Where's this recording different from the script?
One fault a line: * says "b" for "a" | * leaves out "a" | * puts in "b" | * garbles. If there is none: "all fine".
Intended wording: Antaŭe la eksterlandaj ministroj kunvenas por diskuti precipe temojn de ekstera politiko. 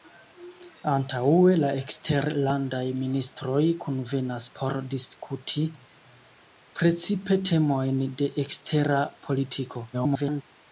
* garbles